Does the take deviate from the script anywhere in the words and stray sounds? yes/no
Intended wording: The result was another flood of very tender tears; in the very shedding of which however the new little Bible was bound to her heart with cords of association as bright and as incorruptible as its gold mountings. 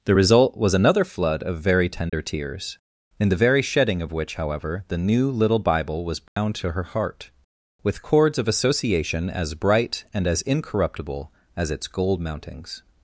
yes